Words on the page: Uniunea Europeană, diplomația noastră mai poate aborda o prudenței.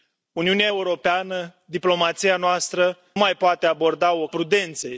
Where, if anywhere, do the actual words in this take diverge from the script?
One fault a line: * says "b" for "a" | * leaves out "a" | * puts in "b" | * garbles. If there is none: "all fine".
all fine